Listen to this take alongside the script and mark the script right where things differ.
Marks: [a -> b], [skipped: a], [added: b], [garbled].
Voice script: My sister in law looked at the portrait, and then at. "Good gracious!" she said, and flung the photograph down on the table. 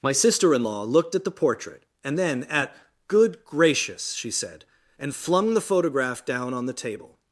My sister in law looked at the portrait, and then at. "Good gracious!" she said, and flung the photograph down on the table.